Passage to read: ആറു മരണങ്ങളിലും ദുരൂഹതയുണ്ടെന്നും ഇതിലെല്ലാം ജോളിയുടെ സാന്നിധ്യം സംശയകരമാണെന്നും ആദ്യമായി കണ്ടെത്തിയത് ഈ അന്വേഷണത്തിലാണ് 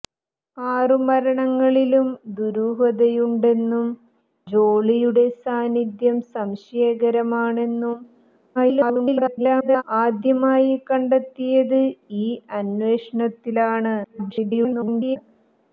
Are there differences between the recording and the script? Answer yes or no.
yes